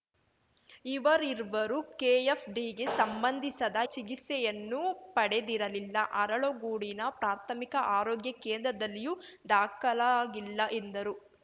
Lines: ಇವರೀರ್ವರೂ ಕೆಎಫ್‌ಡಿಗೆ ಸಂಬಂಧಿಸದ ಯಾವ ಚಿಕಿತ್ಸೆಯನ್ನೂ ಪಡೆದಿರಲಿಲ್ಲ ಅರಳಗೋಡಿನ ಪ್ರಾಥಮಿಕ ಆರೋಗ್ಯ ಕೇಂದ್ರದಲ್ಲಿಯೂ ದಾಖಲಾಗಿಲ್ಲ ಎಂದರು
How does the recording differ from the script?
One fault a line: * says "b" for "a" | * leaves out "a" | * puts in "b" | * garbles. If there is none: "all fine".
* leaves out "ಯಾವ"